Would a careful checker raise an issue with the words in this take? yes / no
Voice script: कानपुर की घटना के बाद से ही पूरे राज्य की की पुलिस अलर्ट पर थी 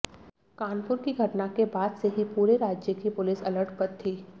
yes